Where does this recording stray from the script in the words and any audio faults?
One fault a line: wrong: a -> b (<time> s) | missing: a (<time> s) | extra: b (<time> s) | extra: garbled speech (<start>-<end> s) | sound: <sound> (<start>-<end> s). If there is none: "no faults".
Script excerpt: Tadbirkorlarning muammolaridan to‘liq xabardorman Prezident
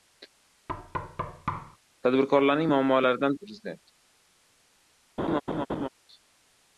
sound: thud (0.7-1.8 s)
missing: to‘liq xabardorman (3.4 s)
sound: laugh (5.2-5.9 s)